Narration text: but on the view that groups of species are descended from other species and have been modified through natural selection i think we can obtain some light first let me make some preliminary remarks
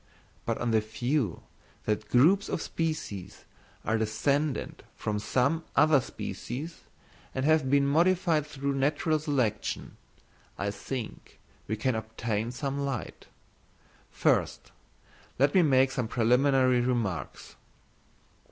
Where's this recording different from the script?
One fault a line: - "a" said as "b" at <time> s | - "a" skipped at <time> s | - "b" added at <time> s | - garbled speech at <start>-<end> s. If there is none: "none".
- "some" added at 5.2 s